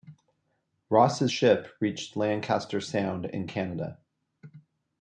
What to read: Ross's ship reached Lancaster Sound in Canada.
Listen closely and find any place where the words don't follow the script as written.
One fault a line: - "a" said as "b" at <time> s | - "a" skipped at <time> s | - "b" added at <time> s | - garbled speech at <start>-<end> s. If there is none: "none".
none